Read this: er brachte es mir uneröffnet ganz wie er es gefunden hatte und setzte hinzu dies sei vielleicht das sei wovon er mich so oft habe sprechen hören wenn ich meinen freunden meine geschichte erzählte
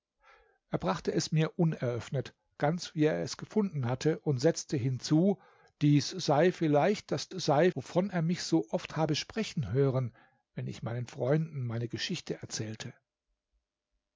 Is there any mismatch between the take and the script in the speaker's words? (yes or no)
no